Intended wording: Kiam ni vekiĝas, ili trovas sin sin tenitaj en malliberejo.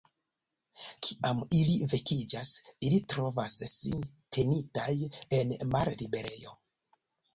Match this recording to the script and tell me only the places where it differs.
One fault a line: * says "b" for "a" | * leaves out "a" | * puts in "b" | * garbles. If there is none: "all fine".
* says "ili" for "ni"
* leaves out "sin"